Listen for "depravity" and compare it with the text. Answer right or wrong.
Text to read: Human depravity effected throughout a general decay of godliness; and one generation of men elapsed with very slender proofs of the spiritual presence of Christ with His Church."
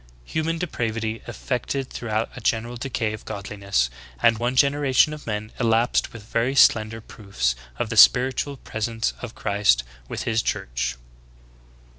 right